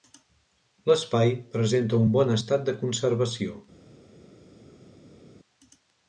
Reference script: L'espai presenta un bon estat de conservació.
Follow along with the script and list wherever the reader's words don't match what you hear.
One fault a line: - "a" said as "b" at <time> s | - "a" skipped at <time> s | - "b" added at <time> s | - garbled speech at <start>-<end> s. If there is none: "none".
none